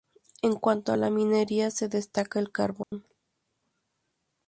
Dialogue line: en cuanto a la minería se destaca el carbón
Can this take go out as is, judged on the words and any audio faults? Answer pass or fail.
fail